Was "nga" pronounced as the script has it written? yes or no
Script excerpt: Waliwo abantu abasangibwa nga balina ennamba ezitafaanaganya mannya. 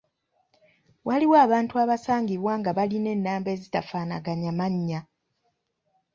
yes